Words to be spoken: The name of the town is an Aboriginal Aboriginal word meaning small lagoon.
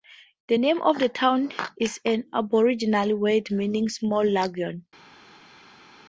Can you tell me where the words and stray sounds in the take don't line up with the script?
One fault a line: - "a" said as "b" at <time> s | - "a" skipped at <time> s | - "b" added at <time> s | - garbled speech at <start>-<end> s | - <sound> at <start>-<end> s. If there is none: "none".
- "Aboriginal" skipped at 3.2 s